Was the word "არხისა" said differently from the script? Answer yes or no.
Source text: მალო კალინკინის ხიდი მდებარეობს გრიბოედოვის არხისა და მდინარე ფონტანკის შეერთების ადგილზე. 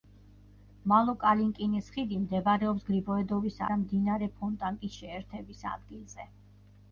yes